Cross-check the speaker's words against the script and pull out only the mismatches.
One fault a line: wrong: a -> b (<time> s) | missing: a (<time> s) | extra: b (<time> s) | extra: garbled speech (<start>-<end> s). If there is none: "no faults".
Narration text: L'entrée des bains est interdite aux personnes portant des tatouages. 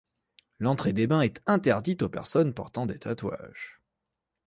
no faults